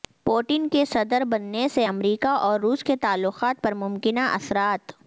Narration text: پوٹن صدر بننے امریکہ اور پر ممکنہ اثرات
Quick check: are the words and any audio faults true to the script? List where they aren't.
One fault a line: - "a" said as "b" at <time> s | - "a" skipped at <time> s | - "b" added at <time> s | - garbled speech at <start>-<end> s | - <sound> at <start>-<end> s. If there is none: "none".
- "کے" added at 0.7 s
- "سے" added at 1.7 s
- "روس کے تعلقات" added at 2.6 s